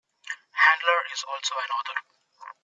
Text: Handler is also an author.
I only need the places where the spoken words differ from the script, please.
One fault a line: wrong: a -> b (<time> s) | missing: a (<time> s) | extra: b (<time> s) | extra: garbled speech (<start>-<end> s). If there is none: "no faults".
no faults